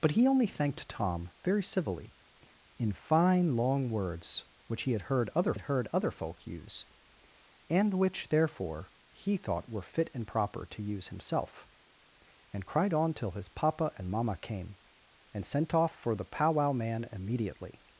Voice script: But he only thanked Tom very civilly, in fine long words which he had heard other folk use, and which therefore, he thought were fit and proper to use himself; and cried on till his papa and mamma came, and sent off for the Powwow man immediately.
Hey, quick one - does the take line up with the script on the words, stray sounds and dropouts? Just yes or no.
no